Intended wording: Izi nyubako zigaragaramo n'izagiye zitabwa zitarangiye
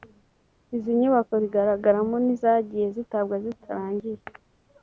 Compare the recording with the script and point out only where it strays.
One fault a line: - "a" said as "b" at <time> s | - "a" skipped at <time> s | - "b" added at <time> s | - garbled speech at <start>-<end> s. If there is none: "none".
none